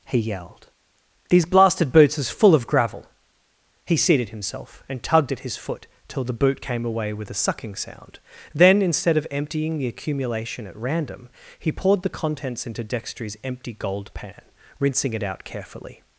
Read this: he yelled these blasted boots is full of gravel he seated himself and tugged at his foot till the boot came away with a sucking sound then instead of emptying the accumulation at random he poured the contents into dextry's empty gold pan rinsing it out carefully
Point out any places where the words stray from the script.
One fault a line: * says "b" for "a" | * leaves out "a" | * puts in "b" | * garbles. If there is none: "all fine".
all fine